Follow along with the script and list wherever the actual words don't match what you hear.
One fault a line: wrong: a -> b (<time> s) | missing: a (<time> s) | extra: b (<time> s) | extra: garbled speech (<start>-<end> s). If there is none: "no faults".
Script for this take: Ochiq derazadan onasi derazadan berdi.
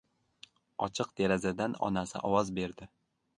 wrong: derazadan -> ovoz (2.3 s)